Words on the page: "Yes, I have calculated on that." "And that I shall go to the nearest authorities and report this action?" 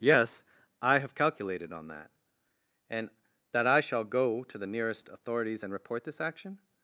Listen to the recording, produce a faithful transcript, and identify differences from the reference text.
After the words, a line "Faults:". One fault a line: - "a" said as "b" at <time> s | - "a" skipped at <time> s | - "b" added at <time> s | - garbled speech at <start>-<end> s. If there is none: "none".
"Yes, I have calculated on that." "And that I shall go to the nearest authorities and report this action?"
Faults:
none